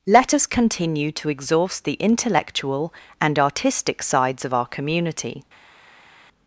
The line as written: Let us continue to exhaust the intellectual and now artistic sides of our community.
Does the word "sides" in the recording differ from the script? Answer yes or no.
no